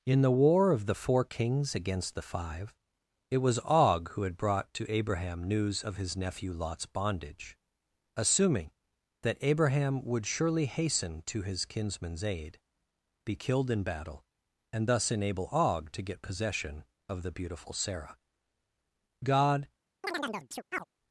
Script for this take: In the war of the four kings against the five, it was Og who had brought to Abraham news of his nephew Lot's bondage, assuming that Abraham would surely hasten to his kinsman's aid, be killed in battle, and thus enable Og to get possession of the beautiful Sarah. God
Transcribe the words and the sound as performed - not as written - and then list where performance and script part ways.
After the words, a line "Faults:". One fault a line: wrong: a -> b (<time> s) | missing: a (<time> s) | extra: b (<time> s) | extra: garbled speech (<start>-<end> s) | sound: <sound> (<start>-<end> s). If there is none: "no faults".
In the war of the four kings against the five, it was Og who had brought to Abraham news of his nephew Lot's bondage, assuming that Abraham would surely hasten to his kinsman's aid, be killed in battle, and thus enable Og to get possession of the beautiful Sarah. God
Faults:
sound: chirp (20.0-20.8 s)